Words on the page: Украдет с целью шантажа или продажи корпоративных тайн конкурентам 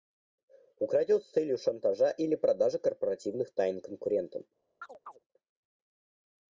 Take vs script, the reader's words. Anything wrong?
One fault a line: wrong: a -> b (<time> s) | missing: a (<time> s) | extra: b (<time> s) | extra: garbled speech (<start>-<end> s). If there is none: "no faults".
no faults